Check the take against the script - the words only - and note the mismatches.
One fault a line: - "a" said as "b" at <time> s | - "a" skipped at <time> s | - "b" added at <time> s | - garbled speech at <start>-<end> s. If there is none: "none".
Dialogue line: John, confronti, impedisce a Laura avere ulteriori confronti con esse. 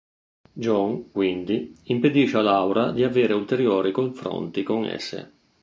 - "confronti" said as "quindi" at 1.1 s
- "di" added at 2.9 s